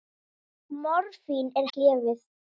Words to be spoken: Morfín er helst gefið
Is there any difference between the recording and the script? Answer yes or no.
yes